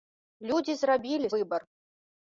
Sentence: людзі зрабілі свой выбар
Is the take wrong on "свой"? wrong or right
wrong